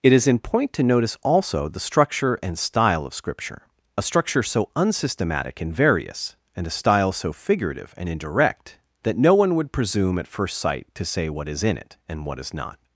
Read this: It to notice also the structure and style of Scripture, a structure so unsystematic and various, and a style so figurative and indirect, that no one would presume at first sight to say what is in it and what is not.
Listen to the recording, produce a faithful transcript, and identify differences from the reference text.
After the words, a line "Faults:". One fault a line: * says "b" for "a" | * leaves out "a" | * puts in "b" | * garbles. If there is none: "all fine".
It is in point to notice also the structure and style of Scripture, a structure so unsystematic and various, and a style so figurative and indirect, that no one would presume at first sight to say what is in it and what is not.
Faults:
* puts in "is in point"